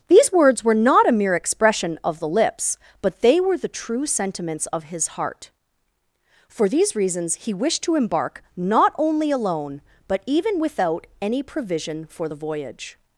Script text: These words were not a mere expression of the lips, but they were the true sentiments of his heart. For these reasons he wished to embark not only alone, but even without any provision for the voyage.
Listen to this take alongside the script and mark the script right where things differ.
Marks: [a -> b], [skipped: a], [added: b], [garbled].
These words were not a mere expression of the lips, but they were the true sentiments of his heart. For these reasons he wished to embark not only alone, but even without any provision for the voyage.